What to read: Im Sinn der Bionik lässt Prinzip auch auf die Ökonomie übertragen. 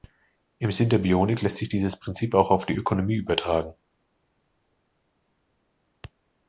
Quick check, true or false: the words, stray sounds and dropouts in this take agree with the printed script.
false